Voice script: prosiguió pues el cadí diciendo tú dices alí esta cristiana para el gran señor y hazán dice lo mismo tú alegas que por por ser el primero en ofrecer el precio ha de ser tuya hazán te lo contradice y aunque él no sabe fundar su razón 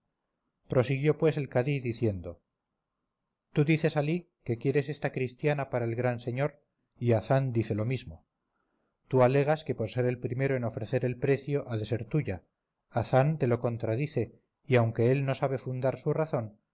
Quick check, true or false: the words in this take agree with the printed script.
false